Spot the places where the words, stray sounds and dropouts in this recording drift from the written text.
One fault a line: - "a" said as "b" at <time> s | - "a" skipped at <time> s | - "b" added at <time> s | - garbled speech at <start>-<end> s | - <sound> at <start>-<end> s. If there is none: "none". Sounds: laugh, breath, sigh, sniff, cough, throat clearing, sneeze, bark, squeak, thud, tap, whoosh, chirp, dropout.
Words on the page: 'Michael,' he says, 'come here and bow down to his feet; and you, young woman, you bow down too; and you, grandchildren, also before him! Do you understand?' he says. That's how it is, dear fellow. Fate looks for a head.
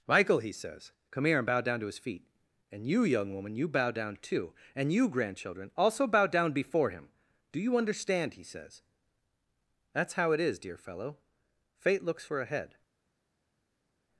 - "bow down" added at 6.1 s